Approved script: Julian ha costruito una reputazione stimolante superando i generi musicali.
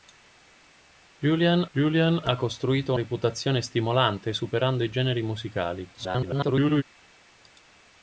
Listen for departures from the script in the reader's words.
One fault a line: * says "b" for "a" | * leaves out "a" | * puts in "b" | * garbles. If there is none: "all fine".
* puts in "julian"
* leaves out "una"
* garbles